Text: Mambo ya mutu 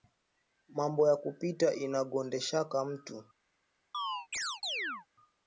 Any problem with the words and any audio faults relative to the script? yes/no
yes